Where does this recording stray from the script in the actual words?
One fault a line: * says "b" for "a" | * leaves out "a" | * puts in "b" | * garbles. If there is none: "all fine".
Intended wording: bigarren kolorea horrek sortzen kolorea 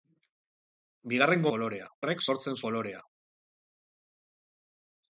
all fine